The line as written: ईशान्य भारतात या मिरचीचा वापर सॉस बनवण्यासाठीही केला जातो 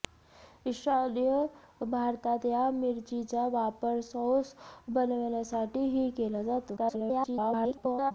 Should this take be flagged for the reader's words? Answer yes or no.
yes